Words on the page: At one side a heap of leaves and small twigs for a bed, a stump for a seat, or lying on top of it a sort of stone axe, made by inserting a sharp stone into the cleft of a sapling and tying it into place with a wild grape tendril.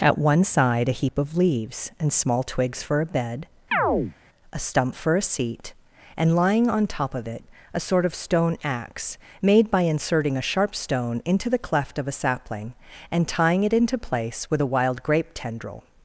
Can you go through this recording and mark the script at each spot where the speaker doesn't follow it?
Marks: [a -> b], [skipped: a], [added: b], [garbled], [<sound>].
At one side a heap of leaves and small twigs for a bed, [chirp] a stump for a seat, [or -> and] lying on top of it a sort of stone axe, made by inserting a sharp stone into the cleft of a sapling and tying it into place with a wild grape tendril.